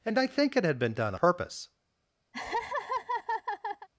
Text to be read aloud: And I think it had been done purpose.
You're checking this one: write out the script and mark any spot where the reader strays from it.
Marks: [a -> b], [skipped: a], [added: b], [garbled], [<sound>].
And I think it had been done purpose. [laugh]